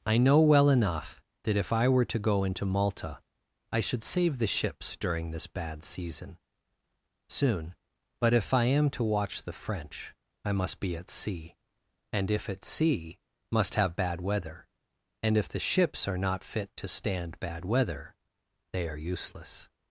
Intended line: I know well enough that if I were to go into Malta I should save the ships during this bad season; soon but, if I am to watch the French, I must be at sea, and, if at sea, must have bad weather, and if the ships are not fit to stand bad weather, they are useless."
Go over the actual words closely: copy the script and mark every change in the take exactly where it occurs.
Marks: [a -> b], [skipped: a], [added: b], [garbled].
I know well enough that if I were to go into Malta I should save the ships during this bad season; soon but, if I am to watch the French, I must be at sea, and, if at sea, must have bad weather, and if the ships are not fit to stand bad weather, they are useless."